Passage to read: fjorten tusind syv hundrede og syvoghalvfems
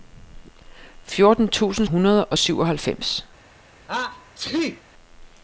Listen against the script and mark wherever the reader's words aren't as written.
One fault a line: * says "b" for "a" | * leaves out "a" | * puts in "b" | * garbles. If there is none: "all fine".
* leaves out "syv"